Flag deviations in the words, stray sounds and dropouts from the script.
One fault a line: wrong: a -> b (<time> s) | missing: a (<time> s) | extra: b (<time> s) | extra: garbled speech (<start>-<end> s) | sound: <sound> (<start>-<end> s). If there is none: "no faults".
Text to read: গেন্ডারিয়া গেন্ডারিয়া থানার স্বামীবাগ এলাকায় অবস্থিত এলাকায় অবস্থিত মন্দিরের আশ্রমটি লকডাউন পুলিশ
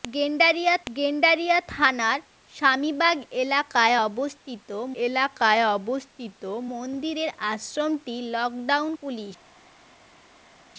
no faults